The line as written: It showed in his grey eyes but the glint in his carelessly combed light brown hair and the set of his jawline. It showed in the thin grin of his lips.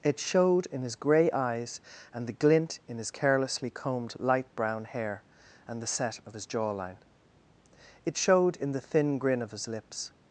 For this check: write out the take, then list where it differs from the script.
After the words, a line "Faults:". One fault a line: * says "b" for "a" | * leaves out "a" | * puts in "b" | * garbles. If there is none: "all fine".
It showed in his grey eyes and the glint in his carelessly combed light brown hair and the set of his jawline. It showed in the thin grin of his lips.
Faults:
* says "and" for "but"